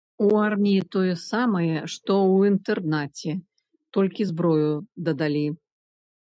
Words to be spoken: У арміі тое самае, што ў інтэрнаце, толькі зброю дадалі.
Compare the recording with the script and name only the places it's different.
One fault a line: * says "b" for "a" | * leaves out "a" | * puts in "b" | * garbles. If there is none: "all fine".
all fine